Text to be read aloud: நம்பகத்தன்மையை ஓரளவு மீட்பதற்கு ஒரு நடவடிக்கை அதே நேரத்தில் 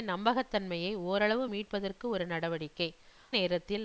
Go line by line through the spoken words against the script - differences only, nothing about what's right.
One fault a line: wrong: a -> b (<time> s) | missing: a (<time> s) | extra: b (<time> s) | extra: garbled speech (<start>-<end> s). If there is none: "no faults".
missing: அதே (2.9 s)